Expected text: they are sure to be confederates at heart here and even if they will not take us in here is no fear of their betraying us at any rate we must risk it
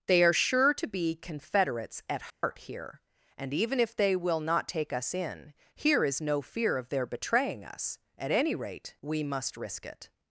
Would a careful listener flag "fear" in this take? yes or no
no